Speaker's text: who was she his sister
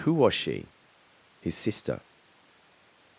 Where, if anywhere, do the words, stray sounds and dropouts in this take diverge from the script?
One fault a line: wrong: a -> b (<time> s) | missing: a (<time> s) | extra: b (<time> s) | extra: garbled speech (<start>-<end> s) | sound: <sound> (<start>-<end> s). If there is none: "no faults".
no faults